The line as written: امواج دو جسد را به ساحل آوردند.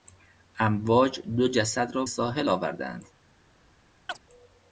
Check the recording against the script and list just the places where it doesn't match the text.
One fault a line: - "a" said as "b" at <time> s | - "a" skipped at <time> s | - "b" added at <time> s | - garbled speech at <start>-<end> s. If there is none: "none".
- "به" skipped at 2.0 s